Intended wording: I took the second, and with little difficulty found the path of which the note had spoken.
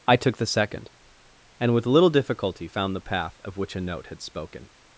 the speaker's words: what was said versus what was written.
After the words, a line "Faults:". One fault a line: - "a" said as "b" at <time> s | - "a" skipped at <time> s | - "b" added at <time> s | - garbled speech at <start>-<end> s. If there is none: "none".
I took the second, and with little difficulty found the path of which a note had spoken.
Faults:
- "the" said as "a" at 3.7 s